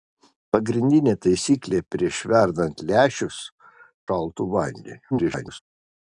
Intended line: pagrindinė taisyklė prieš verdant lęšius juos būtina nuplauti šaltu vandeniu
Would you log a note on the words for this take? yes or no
yes